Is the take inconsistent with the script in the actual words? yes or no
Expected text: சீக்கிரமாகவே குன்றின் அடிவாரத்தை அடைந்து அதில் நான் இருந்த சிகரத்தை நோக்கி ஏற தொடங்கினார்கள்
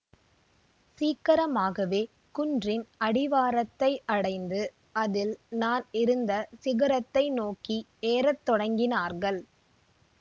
no